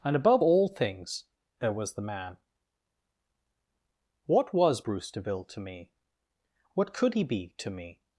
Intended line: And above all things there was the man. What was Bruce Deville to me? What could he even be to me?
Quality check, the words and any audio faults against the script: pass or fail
fail